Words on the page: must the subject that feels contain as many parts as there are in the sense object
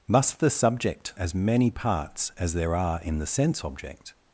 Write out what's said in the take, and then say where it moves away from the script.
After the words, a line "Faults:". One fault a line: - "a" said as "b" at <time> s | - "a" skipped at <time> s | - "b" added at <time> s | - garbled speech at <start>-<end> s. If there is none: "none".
must the subject as many parts as there are in the sense object
Faults:
- "that feels contain" skipped at 1.1 s